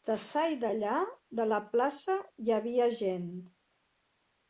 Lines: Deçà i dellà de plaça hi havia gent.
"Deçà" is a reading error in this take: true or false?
false